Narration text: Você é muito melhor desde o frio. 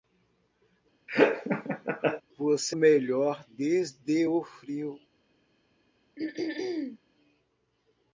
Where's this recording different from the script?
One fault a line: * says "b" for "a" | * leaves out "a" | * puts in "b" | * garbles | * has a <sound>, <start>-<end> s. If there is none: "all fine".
* has a laugh, 1.1-2.2 s
* leaves out "é muito"
* has a throat clearing, 6.2-7.0 s